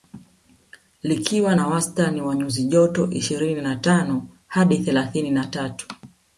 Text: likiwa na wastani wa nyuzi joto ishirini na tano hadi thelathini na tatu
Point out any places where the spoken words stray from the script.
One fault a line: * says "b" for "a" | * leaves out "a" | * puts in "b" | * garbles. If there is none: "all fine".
all fine